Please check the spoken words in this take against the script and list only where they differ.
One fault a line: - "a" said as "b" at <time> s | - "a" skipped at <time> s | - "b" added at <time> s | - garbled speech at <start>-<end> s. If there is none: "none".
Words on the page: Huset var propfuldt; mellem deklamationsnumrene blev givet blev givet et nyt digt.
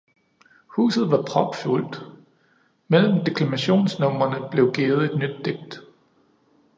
- "blev givet" skipped at 5.1 s